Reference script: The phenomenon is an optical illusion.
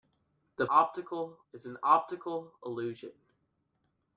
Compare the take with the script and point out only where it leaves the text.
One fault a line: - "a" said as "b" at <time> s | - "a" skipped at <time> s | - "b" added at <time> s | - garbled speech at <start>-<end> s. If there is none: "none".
- "phenomenon" said as "optical" at 0.7 s